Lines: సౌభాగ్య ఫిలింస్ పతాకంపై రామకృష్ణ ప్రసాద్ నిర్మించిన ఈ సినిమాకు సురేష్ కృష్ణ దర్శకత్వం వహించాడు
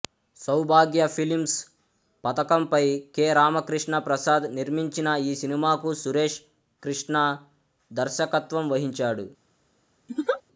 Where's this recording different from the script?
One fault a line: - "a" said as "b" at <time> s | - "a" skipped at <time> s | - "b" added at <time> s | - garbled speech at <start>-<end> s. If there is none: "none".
- "కె" added at 3.1 s